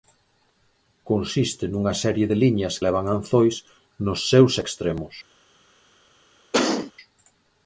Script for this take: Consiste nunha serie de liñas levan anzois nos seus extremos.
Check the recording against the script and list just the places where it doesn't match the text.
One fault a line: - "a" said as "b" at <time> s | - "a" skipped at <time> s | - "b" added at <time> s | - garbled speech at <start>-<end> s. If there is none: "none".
none